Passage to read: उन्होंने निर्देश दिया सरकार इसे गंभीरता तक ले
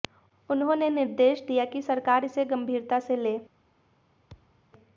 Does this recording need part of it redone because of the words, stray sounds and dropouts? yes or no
yes